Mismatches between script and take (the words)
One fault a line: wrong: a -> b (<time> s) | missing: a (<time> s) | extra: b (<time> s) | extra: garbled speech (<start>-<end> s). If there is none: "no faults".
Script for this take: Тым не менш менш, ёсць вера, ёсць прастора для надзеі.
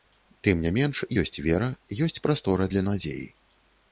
missing: менш (1.0 s)